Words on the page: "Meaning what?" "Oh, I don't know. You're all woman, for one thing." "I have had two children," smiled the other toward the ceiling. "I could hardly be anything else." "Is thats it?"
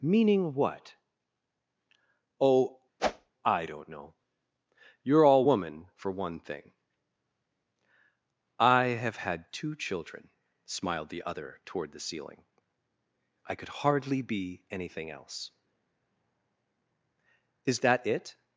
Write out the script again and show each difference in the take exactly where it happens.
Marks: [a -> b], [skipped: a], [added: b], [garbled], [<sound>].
"Meaning what?" "Oh, [whoosh] I don't know. You're all woman, for one thing." "I have had two children," smiled the other toward the ceiling. "I could hardly be anything else." "Is [thats -> that] it?"